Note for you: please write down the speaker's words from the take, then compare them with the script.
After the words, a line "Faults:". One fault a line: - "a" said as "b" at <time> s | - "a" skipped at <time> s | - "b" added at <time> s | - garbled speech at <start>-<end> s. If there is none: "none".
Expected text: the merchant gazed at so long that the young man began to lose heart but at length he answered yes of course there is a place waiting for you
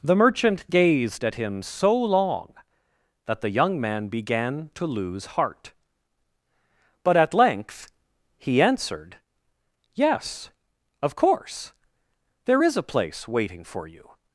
the merchant gazed at him so long that the young man began to lose heart but at length he answered yes of course there is a place waiting for you
Faults:
- "him" added at 1.3 s